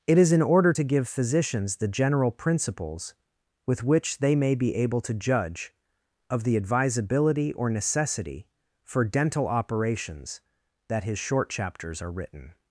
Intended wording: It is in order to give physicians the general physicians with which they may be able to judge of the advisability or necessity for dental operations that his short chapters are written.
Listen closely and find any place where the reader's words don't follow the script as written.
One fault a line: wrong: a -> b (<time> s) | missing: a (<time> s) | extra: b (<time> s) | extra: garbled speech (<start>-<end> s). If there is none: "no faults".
wrong: physicians -> principles (2.3 s)